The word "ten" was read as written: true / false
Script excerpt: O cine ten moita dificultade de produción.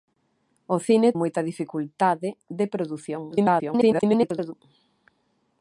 false